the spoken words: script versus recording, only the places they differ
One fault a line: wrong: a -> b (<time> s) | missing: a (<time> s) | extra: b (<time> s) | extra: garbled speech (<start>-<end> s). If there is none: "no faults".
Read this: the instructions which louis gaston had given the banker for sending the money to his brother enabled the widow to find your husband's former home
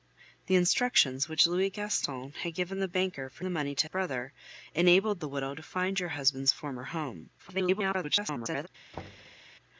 missing: sending (3.5 s)
missing: his (3.9 s)
extra: garbled speech (7.4-8.7 s)